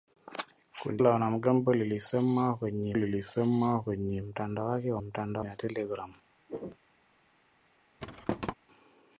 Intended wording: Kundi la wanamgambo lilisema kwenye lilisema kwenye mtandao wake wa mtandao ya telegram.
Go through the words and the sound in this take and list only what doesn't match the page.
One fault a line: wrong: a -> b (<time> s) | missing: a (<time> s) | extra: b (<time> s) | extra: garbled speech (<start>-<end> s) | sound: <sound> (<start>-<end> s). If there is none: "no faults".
sound: throat clearing (6.5-6.8 s)
sound: thud (8.0-8.5 s)